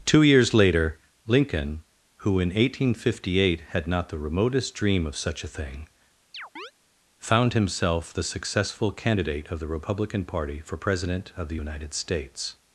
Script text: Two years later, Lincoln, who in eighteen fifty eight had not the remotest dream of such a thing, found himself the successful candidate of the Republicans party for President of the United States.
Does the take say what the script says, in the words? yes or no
no